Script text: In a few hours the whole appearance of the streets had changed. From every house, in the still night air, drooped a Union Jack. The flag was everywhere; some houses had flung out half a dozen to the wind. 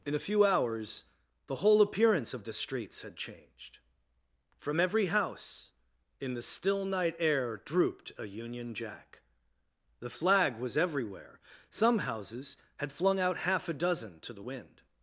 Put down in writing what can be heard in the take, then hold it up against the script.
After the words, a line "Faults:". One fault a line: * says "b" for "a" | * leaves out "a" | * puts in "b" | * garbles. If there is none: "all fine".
In a few hours the whole appearance of the streets had changed. From every house, in the still night air, drooped a Union Jack. The flag was everywhere; some houses had flung out half a dozen to the wind.
Faults:
all fine